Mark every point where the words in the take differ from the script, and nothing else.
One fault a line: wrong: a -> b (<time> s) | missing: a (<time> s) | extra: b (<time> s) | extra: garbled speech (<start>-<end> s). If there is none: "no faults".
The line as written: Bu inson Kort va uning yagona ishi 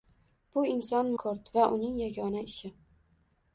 no faults